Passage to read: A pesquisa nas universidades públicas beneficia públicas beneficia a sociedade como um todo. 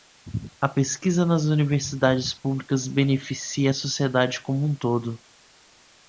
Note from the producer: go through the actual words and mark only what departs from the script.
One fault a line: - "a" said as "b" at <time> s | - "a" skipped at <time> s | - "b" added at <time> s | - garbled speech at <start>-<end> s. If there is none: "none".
- "públicas beneficia" skipped at 3.7 s